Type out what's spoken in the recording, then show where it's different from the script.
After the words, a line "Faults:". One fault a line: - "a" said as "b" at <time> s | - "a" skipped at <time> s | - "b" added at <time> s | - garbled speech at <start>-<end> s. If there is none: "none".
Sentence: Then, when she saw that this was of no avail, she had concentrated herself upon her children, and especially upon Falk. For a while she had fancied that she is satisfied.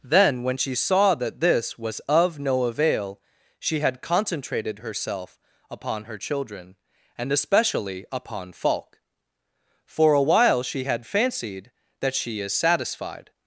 Then, when she saw that this was of no avail, she had concentrated herself upon her children, and especially upon Falk. For a while she had fancied that she is satisfied.
Faults:
none